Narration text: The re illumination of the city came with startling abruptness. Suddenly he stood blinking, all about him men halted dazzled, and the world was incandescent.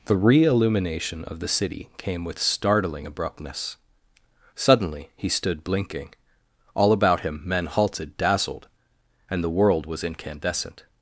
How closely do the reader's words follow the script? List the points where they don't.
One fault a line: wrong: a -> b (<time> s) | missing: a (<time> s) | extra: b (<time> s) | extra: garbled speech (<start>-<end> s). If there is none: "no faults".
no faults